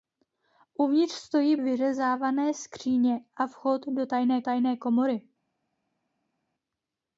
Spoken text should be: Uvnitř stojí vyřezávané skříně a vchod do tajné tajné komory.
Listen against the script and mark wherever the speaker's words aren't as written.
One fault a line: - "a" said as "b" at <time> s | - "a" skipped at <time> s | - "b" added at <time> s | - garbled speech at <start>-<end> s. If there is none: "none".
none